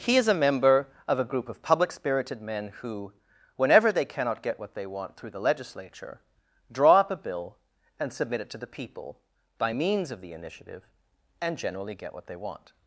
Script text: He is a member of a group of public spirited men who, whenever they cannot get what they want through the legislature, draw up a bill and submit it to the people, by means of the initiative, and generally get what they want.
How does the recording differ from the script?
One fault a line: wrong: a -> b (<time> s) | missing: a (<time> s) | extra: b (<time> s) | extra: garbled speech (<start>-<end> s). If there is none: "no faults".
no faults